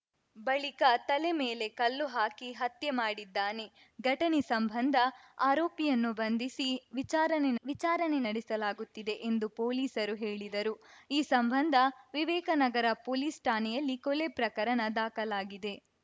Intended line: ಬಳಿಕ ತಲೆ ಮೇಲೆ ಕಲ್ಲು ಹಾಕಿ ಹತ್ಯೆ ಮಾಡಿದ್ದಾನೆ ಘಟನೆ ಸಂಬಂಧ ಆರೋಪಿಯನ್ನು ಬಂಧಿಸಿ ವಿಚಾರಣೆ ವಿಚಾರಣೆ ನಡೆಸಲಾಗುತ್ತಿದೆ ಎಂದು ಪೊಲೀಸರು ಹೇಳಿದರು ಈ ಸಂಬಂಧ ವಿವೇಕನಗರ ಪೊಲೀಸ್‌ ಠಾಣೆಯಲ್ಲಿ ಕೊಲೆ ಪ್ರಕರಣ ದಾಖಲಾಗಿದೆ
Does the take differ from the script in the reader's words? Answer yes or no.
no